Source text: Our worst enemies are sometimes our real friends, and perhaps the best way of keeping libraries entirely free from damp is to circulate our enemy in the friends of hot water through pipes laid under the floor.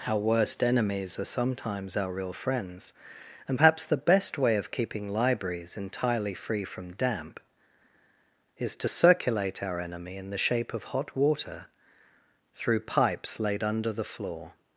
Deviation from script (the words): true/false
true